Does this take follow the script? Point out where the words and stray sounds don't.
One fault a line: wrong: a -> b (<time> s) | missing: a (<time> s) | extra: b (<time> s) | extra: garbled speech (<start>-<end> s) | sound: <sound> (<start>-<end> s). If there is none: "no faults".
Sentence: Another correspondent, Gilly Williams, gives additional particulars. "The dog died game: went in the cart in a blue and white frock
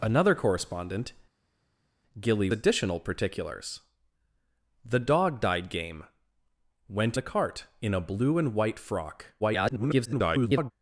missing: Williams gives (2.5 s)
missing: in (7.2 s)
extra: garbled speech (9.4-10.7 s)